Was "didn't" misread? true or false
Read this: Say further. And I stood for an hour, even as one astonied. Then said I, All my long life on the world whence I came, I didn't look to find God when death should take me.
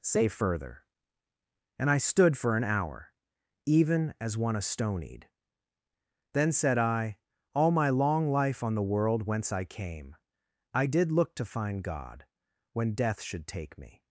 true